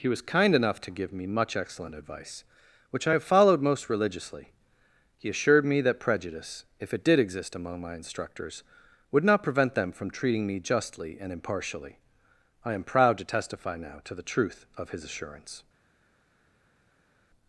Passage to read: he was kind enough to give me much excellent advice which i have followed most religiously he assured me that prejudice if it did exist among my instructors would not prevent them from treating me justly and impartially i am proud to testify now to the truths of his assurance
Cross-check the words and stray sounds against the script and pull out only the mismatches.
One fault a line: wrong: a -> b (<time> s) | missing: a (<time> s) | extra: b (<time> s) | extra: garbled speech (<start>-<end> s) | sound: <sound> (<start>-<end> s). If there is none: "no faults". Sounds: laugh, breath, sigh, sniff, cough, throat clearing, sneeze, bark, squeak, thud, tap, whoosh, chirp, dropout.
wrong: truths -> truth (14.2 s)